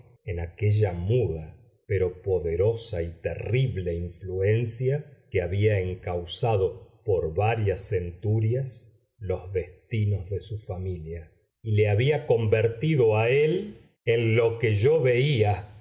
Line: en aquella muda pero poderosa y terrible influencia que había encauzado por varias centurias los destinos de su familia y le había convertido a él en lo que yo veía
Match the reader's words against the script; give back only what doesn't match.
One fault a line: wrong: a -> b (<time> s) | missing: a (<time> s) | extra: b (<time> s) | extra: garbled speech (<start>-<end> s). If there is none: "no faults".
no faults